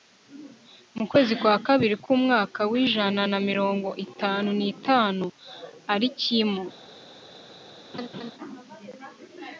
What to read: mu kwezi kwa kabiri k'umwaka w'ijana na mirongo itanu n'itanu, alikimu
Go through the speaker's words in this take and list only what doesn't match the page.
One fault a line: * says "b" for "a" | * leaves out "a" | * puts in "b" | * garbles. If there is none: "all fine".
all fine